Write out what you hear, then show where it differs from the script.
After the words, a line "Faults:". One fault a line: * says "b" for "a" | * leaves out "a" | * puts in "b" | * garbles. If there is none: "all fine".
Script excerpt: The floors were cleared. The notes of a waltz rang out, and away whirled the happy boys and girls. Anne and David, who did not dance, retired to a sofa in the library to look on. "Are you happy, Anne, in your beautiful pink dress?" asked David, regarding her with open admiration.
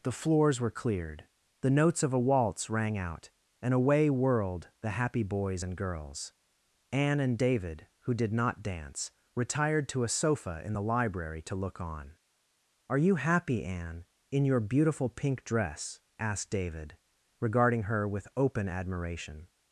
The floors were cleared. The notes of a waltz rang out, and away whirled the happy boys and girls. Anne and David, who did not dance, retired to a sofa in the library to look on. "Are you happy, Anne, in your beautiful pink dress?" asked David, regarding her with open admiration.
Faults:
all fine